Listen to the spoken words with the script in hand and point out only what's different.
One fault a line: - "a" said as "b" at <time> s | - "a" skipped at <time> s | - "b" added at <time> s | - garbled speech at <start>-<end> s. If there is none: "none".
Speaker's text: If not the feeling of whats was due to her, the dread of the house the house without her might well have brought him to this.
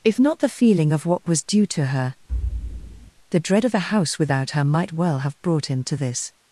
- "whats" said as "what" at 1.0 s
- "the house" skipped at 4.2 s